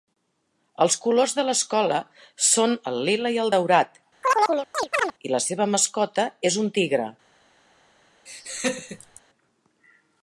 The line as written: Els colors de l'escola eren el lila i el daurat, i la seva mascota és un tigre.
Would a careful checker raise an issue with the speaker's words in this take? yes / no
yes